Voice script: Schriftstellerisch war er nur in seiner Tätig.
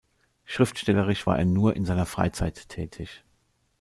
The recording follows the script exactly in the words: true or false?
false